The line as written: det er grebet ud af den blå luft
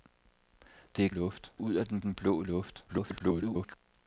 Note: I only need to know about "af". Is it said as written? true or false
true